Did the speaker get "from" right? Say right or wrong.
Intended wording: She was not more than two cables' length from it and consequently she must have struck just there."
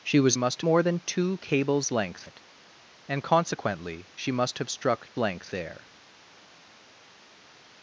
wrong